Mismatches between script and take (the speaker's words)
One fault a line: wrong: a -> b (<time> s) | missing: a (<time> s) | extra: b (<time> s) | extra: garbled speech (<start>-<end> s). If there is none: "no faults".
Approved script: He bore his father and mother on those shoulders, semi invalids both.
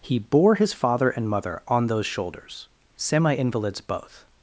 no faults